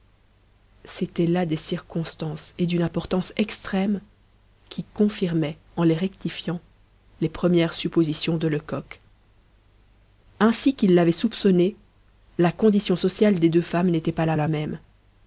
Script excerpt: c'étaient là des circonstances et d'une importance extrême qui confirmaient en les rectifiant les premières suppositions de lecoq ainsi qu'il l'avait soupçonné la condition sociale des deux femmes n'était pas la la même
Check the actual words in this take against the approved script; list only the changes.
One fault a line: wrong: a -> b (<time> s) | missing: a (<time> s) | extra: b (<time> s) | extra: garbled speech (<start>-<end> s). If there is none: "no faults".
no faults